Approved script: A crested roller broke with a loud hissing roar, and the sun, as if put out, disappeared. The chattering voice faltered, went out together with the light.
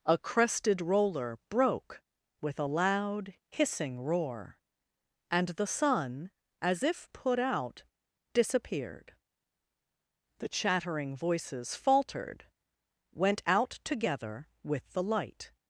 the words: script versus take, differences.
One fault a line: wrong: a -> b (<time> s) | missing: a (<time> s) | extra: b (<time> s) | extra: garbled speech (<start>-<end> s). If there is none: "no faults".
wrong: voice -> voices (11.2 s)